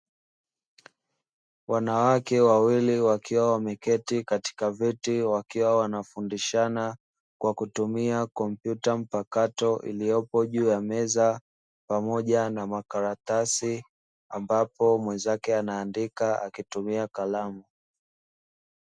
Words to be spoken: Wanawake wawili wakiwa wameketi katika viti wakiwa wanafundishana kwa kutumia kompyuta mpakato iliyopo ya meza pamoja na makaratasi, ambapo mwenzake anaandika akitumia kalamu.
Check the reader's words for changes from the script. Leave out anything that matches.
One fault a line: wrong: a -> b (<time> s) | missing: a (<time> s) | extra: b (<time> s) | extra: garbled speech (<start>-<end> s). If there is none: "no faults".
extra: juu (10.4 s)